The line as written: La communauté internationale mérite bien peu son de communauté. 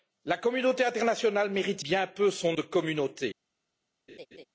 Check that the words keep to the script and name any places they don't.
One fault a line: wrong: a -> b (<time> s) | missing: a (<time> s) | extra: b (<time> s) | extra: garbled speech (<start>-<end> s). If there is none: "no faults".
no faults